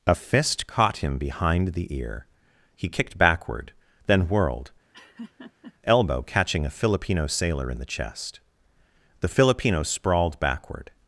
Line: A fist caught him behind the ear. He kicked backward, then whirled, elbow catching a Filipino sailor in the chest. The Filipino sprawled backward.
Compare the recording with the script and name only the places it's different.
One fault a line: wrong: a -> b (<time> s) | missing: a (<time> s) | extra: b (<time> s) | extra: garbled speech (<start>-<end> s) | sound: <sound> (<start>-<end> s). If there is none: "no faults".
sound: laugh (4.9-5.7 s)